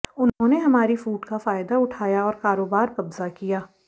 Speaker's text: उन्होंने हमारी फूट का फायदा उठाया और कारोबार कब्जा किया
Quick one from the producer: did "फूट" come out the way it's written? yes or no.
yes